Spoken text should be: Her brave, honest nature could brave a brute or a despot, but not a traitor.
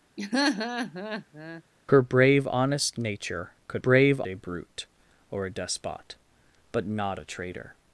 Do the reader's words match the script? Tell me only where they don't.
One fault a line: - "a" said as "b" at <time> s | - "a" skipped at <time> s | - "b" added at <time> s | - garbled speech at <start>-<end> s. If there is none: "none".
none